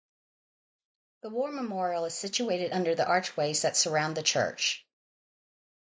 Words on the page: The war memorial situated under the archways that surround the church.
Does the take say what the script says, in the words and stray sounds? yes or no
no